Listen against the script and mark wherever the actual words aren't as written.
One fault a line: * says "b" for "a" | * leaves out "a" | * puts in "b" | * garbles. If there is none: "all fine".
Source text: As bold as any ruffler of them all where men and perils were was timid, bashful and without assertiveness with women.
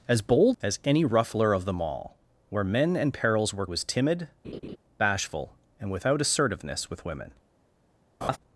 all fine